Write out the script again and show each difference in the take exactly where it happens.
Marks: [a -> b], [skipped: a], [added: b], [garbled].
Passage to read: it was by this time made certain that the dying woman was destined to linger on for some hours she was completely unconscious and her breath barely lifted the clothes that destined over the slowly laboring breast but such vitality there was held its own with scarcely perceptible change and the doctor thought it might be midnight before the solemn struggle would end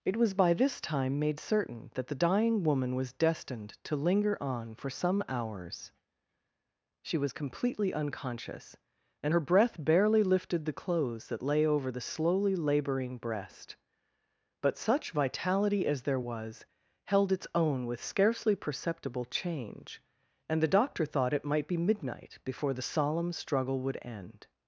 it was by this time made certain that the dying woman was destined to linger on for some hours she was completely unconscious and her breath barely lifted the clothes that [destined -> lay] over the slowly laboring breast but such vitality [added: as] there was held its own with scarcely perceptible change and the doctor thought it might be midnight before the solemn struggle would end